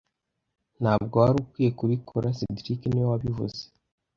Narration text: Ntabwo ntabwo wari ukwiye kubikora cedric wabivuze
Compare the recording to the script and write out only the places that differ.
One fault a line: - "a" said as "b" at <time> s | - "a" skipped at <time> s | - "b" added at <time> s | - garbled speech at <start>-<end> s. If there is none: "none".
- "ntabwo" skipped at 1.1 s
- "niwe" added at 2.9 s